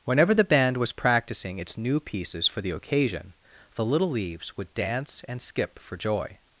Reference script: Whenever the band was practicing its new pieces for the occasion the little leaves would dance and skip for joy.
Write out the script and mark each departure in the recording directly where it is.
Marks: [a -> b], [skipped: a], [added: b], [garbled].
Whenever the band was practicing its new pieces for the occasion the little leaves would dance and skip for joy.